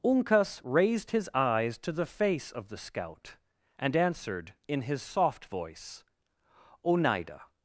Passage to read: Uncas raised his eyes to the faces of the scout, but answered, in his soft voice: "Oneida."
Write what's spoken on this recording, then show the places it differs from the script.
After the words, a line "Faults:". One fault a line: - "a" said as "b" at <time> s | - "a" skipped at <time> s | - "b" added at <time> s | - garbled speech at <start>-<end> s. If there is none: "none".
Uncas raised his eyes to the face of the scout, and answered, in his soft voice: "Oneida."
Faults:
- "faces" said as "face" at 2.1 s
- "but" said as "and" at 3.8 s